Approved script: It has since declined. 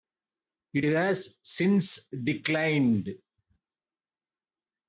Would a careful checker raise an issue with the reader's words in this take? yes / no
no